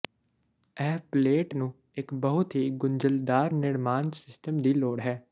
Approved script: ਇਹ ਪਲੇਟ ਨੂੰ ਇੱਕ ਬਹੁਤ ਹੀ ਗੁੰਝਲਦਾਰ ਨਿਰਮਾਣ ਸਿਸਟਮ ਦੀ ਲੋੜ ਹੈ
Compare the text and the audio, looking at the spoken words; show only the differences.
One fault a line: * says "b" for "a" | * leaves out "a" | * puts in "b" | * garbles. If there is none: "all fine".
all fine